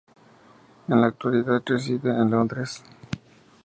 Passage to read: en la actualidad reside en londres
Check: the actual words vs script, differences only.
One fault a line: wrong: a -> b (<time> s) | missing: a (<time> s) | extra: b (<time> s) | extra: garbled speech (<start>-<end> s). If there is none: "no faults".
no faults